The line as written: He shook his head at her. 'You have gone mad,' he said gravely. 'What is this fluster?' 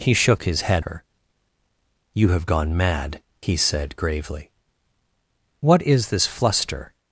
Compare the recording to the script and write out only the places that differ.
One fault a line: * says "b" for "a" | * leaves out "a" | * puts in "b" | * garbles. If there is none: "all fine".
* leaves out "at"